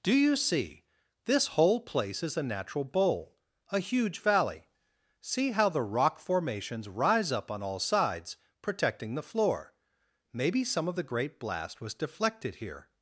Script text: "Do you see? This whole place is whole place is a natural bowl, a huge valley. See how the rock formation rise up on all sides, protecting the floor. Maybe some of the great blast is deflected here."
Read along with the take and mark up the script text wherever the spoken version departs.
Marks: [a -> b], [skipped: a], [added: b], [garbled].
"Do you see? This whole place is [skipped: whole place is] a natural bowl, a huge valley. See how the rock [formation -> formations] rise up on all sides, protecting the floor. Maybe some of the great blast [is -> was] deflected here."